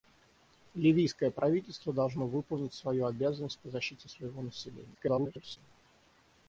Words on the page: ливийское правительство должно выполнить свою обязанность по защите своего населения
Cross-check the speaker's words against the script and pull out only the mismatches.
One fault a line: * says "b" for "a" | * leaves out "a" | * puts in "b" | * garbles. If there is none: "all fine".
* garbles